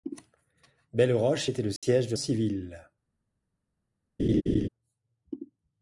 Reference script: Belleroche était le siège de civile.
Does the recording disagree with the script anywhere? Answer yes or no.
no